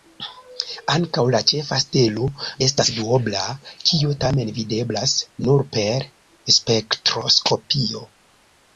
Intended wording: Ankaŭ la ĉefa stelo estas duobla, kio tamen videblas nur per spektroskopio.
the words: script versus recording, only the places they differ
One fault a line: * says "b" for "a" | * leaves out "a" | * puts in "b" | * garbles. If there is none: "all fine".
all fine